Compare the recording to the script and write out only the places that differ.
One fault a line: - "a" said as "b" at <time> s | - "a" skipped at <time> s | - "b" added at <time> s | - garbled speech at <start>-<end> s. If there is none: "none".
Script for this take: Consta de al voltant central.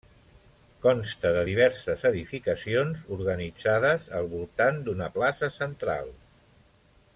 - "diverses edificacions organitzades" added at 1.5 s
- "d'una plaça" added at 4.9 s